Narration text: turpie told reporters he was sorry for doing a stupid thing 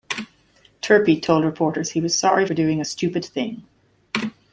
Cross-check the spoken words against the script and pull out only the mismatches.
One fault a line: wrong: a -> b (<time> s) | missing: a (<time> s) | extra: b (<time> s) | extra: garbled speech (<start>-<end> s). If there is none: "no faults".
no faults